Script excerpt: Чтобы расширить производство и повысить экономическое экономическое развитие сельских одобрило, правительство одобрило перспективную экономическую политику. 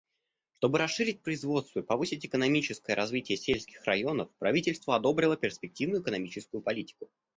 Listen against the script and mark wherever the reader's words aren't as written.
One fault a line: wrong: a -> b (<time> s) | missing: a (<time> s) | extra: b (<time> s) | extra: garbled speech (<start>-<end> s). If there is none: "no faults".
missing: экономическое (3.0 s)
wrong: одобрило -> районов (3.9 s)